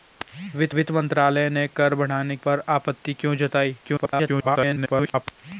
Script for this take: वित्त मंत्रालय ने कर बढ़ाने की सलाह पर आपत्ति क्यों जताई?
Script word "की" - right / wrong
wrong